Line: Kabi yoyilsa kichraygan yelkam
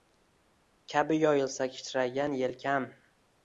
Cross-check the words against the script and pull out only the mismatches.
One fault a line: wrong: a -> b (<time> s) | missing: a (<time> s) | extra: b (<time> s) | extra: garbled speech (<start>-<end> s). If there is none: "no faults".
no faults